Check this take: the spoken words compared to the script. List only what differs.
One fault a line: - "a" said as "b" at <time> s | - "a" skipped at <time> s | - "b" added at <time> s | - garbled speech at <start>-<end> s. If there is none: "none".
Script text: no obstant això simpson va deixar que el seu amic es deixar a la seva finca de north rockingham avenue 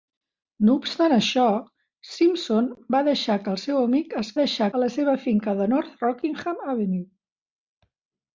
none